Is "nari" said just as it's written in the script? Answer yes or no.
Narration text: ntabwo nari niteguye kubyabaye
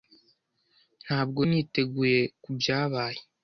no